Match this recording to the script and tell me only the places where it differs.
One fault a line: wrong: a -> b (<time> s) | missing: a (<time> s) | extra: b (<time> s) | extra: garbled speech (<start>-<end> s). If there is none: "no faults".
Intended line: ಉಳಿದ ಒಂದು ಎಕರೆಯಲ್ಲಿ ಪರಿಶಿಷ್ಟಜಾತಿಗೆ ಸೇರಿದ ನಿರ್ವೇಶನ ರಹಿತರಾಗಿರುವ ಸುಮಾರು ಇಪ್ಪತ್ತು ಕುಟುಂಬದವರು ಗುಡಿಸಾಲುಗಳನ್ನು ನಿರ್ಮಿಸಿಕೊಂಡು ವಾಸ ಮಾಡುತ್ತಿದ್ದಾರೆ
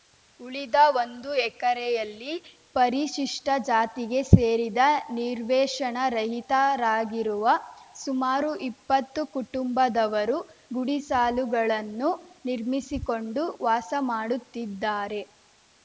no faults